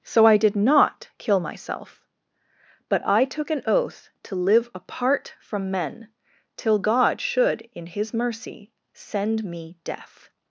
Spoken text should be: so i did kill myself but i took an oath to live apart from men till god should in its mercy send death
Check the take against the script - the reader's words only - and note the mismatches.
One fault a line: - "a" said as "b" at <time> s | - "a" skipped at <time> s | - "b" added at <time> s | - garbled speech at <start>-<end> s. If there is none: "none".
- "not" added at 0.6 s
- "its" said as "his" at 7.8 s
- "me" added at 9.4 s